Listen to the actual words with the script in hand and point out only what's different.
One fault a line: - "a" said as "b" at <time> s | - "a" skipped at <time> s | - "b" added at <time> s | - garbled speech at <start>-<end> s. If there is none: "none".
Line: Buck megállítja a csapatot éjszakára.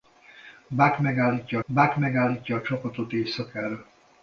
- "buck megállítja" added at 1.6 s